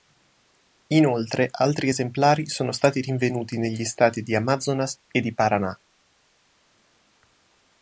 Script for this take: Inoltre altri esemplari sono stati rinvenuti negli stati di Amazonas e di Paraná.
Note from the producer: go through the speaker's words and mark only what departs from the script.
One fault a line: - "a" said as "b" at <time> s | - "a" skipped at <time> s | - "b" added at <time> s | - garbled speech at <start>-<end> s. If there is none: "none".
none